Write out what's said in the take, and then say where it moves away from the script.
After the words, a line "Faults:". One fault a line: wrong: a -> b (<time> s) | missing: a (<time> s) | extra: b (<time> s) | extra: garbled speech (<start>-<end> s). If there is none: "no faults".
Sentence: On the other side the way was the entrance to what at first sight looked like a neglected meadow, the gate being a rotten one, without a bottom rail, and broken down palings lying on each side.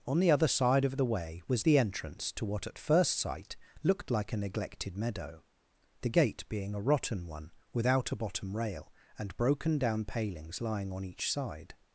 On the other side of the way was the entrance to what at first sight looked like a neglected meadow, the gate being a rotten one, without a bottom rail, and broken down palings lying on each side.
Faults:
extra: of (0.8 s)